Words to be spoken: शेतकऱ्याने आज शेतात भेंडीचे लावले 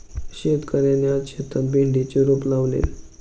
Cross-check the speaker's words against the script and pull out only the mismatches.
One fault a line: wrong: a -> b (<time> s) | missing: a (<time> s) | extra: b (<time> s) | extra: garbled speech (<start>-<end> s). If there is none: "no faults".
extra: रोप (2.2 s)